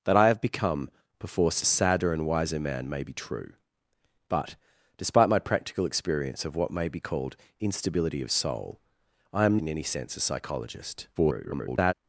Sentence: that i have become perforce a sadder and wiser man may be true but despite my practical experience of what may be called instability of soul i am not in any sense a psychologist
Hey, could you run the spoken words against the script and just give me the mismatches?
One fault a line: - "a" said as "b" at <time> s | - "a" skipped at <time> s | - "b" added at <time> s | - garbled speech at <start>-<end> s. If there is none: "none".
- "not" skipped at 9.6 s
- garbled speech at 11.1-11.9 s